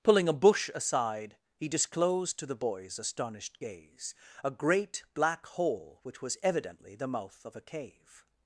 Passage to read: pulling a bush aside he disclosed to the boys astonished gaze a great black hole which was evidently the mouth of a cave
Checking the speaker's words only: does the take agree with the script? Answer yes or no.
yes